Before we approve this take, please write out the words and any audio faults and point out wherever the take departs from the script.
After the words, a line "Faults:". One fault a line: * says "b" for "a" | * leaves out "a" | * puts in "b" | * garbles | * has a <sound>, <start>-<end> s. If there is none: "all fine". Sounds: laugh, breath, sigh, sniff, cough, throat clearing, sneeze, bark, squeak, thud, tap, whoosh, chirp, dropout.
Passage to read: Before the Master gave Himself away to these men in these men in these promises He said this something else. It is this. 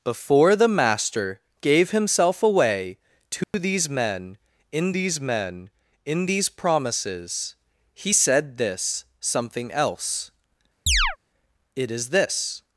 Before the Master gave Himself away to these men in these men in these promises He said this something else. It is this.
Faults:
* has a dropout, 3.4-3.5 s
* has a chirp, 10.9-11.2 s